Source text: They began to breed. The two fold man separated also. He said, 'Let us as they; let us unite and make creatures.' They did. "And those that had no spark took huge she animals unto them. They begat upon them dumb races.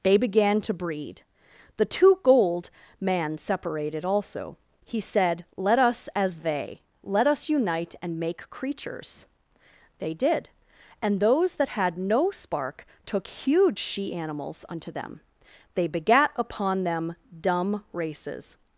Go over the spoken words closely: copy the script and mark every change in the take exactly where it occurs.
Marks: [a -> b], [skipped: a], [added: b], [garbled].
They began to breed. The two [fold -> gold] man separated also. He said, 'Let us as they; let us unite and make creatures.' They did. "And those that had no spark took huge she animals unto them. They begat upon them dumb races.